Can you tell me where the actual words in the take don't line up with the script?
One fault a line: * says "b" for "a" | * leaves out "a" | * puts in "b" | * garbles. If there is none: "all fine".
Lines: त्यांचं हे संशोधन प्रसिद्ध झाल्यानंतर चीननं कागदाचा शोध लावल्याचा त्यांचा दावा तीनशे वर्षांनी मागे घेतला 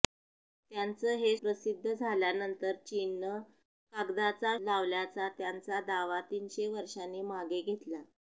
* leaves out "संशोधन"
* leaves out "शोध"